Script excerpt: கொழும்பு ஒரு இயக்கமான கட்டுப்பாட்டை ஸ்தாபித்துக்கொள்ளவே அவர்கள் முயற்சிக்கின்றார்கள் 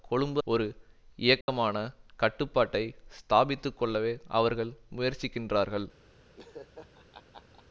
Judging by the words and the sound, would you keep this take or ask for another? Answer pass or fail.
fail